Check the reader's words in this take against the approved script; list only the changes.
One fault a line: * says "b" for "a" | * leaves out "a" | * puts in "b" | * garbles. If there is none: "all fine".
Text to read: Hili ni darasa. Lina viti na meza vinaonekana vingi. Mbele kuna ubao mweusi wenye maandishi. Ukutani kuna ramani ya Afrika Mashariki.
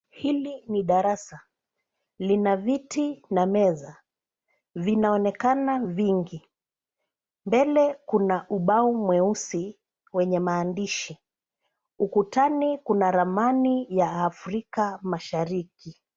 all fine